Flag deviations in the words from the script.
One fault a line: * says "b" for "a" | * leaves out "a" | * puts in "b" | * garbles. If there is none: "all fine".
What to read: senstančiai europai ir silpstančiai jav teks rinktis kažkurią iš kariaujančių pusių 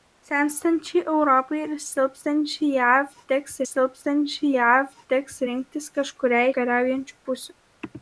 * puts in "silpstančiai jav teks"
* leaves out "iš"